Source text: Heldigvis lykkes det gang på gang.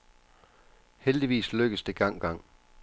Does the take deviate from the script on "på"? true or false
true